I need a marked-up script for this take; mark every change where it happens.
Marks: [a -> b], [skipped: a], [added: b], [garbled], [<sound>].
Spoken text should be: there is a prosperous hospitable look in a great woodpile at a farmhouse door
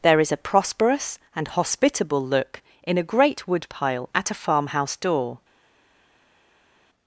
there is a prosperous [added: and] hospitable look in a great woodpile at a farmhouse door